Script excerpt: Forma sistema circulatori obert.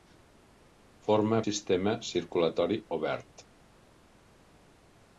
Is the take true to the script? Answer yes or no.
yes